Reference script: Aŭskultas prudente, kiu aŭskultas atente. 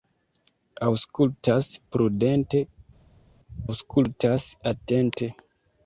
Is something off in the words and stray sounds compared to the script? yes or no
yes